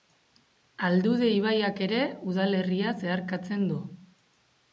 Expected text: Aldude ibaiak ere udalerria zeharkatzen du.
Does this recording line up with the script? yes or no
yes